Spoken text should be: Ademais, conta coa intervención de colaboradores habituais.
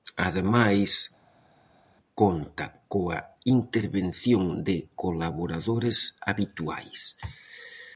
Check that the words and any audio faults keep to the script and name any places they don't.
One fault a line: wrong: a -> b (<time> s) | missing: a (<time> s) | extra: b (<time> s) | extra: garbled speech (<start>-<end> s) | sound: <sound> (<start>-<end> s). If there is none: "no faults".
no faults